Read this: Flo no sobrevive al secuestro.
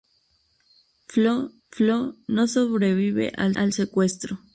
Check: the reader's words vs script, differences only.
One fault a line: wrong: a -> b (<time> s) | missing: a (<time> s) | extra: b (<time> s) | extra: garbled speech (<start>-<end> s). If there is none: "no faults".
extra: flo (1.7 s)
extra: al (3.5 s)